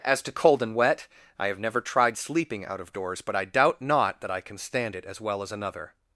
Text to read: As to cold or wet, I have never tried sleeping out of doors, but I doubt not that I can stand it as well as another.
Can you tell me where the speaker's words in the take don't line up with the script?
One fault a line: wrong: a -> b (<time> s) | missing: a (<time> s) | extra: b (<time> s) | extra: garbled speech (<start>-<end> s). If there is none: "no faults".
wrong: or -> and (0.6 s)